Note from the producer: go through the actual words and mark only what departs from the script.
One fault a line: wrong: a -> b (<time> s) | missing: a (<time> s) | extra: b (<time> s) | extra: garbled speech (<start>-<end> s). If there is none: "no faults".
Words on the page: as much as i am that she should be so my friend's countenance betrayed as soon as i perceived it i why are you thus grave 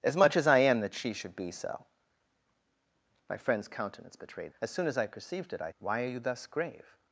no faults